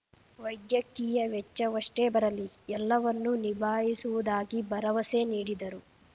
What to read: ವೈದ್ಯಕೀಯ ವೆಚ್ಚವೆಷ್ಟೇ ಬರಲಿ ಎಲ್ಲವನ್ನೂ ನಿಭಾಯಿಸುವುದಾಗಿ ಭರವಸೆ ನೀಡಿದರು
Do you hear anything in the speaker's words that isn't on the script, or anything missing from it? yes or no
no